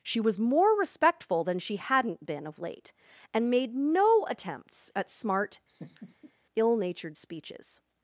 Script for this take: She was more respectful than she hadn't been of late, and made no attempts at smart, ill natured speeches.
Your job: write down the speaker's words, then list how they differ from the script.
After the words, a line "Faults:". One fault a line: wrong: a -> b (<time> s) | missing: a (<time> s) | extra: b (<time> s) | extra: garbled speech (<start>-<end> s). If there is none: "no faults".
She was more respectful than she hadn't been of late, and made no attempts at smart, ill natured speeches.
Faults:
no faults